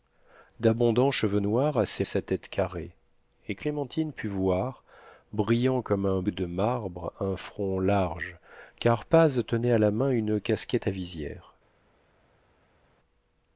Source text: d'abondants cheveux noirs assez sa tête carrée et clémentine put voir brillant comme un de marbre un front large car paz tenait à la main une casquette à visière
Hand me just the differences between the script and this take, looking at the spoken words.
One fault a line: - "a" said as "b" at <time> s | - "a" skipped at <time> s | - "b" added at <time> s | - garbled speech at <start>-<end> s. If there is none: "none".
none